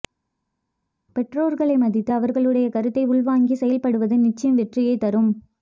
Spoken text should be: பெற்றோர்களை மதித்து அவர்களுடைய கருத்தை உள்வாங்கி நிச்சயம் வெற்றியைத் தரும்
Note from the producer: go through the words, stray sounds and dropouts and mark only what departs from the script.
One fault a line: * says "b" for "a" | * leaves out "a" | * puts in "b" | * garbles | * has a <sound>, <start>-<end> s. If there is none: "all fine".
* puts in "செயல்படுவது"